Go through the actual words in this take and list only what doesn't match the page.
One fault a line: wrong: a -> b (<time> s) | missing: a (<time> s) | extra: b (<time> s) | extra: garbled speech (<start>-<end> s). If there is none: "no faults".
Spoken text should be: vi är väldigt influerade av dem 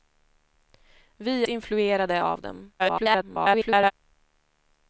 missing: är väldigt (1.4 s)
extra: garbled speech (2.8-3.9 s)